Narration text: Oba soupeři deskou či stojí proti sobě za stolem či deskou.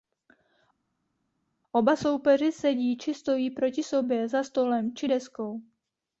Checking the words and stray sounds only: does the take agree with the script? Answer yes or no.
no